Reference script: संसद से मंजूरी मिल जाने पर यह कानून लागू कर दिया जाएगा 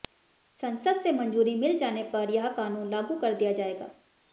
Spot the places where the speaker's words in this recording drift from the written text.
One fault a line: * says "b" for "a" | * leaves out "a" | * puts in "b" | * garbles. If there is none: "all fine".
all fine